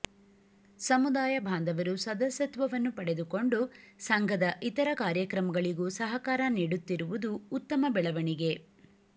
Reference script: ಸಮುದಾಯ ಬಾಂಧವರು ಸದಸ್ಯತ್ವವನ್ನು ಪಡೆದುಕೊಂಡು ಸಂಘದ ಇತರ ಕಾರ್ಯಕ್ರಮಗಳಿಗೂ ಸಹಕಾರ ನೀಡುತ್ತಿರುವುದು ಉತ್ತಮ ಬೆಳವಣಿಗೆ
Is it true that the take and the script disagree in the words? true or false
false